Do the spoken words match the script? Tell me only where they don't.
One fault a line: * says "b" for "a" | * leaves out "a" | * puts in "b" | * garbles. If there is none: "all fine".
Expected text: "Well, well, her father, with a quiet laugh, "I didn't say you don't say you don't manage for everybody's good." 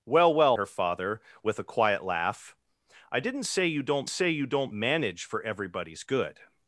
all fine